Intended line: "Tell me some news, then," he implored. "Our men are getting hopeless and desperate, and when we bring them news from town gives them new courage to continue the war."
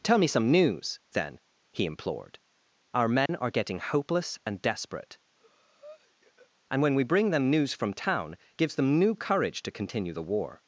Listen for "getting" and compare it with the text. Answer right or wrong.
right